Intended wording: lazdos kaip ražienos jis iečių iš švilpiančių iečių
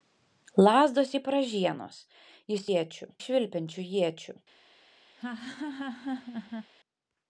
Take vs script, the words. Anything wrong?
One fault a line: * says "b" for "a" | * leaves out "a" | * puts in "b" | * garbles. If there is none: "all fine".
all fine